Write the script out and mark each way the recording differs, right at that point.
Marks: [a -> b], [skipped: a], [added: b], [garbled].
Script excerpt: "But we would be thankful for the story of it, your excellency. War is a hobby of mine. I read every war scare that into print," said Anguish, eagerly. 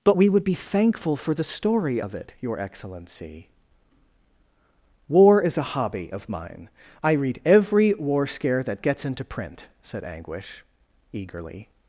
"But we would be thankful for the story of it, your excellency. War is a hobby of mine. I read every war scare that [added: gets] into print," said Anguish, eagerly.